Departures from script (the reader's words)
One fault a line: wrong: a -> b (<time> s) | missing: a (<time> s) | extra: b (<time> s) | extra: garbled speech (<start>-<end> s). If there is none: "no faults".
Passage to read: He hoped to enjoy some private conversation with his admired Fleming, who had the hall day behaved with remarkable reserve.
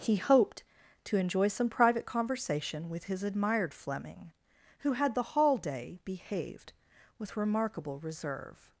no faults